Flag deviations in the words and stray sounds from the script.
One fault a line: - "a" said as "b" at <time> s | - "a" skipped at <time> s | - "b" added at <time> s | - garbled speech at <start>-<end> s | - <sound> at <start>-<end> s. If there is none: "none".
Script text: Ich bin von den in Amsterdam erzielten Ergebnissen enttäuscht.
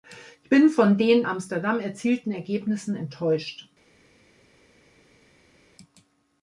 - "in" skipped at 1.3 s